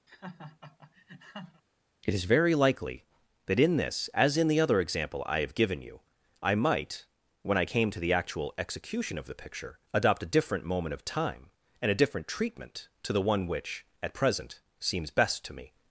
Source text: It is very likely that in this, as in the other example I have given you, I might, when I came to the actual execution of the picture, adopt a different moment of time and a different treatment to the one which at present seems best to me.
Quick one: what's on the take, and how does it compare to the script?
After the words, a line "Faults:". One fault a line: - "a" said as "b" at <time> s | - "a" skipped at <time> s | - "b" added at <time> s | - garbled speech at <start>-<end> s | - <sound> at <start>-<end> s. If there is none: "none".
It is very likely that in this, as in the other example I have given you, I might, when I came to the actual execution of the picture, adopt a different moment of time and a different treatment to the one which at present seems best to me.
Faults:
- laugh at 0.1-1.6 s